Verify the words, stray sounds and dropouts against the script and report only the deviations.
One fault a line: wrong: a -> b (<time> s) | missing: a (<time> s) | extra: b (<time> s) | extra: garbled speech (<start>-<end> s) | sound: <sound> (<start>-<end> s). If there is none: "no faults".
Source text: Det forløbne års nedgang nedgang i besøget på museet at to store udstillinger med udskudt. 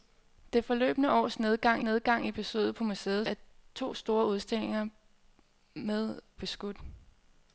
no faults